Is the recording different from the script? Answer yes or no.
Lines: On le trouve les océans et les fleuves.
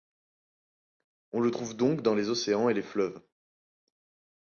yes